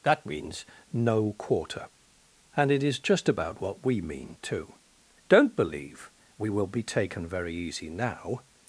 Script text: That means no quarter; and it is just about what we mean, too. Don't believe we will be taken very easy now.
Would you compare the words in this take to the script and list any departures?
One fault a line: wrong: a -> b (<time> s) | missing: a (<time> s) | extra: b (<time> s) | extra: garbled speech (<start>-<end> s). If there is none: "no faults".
no faults